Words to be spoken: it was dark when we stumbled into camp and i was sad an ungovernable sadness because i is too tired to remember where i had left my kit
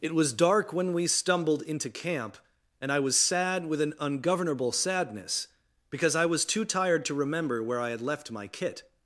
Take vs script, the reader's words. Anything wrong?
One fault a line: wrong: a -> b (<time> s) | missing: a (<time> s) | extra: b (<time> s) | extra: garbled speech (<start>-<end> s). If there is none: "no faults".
extra: with (3.7 s)
wrong: is -> was (6.2 s)